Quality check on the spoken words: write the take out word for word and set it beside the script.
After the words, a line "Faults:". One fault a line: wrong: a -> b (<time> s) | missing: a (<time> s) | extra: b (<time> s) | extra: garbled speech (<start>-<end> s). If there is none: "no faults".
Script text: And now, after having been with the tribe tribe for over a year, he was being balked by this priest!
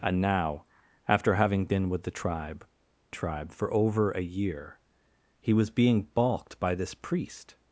And now, after having been with the tribe tribe for over a year, he was being balked by this priest!
Faults:
no faults